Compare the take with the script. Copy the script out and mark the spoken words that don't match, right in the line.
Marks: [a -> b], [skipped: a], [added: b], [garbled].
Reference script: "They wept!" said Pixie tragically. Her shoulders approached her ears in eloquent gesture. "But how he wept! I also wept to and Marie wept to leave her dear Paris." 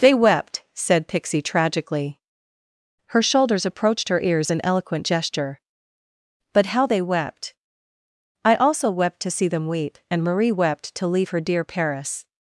"They wept!" said Pixie tragically. Her shoulders approached her ears in eloquent gesture. "But how [he -> they] wept! I also wept to [added: see them weep] and Marie wept to leave her dear Paris."